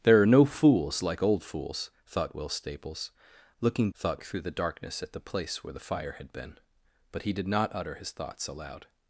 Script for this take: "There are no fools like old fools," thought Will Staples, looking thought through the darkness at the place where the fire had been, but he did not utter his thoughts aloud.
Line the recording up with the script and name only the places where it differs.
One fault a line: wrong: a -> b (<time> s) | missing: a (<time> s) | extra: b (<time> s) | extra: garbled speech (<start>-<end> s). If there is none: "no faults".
no faults